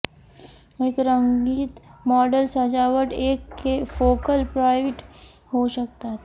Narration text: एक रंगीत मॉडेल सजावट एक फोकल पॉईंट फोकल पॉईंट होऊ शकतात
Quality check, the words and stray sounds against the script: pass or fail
fail